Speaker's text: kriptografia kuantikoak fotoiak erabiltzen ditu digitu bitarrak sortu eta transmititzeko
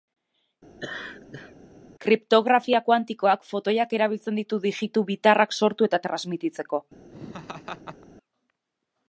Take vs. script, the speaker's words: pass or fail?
pass